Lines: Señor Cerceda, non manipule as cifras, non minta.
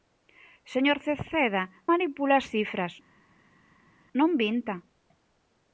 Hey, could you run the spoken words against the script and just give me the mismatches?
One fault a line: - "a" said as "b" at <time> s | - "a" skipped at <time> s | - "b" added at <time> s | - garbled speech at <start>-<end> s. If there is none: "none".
- "non" skipped at 1.6 s